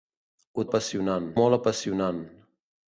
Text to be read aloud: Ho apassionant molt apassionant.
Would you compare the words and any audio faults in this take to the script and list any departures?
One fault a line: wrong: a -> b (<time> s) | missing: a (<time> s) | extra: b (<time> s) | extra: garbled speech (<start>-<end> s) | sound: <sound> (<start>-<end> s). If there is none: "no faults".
no faults